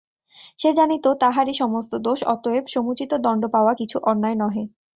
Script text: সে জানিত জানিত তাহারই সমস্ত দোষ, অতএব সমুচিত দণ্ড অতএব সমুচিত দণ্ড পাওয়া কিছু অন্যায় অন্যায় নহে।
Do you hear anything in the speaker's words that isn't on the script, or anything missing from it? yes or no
yes